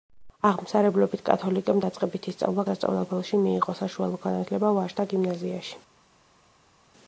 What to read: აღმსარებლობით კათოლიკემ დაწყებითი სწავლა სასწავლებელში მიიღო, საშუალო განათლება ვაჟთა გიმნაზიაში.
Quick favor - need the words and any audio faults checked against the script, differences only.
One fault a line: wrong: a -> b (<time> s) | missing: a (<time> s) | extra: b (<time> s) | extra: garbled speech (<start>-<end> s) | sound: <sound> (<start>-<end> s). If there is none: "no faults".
no faults